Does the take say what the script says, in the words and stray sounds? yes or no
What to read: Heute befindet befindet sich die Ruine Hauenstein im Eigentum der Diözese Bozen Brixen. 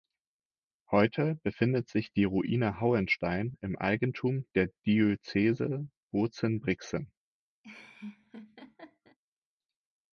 no